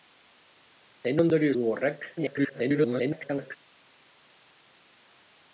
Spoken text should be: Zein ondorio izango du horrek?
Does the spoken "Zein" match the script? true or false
true